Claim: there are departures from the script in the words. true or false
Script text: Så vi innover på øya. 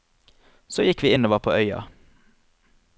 true